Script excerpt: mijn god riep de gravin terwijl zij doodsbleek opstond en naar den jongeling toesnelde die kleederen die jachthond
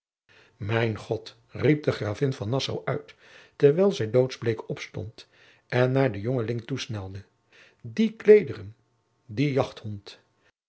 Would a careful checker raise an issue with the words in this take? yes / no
yes